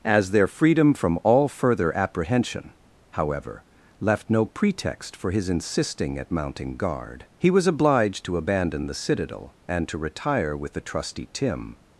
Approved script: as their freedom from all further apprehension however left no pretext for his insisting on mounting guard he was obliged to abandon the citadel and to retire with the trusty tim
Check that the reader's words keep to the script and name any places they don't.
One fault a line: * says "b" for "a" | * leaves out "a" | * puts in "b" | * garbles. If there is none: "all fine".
* says "at" for "on"